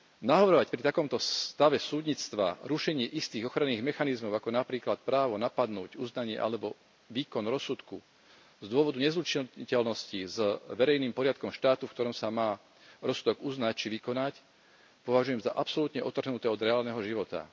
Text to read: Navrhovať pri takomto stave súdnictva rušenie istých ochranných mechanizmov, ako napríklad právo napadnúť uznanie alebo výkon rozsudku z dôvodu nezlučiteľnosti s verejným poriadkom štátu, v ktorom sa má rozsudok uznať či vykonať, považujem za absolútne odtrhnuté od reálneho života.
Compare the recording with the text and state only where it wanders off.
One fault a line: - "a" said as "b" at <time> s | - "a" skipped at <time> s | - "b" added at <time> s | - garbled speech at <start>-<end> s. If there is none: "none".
none